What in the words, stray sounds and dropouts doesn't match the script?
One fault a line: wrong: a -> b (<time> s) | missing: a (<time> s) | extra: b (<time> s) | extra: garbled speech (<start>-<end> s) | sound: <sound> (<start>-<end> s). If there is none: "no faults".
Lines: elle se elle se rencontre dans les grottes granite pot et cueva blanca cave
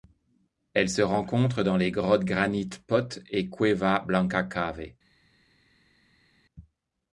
missing: elle se (1.0 s)